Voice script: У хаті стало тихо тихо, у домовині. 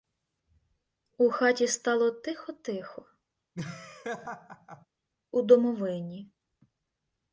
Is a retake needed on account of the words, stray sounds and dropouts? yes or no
yes